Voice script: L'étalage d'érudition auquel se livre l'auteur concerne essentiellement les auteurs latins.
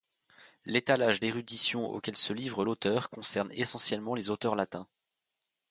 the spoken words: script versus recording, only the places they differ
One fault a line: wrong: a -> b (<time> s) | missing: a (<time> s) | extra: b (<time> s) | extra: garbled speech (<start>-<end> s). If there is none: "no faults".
no faults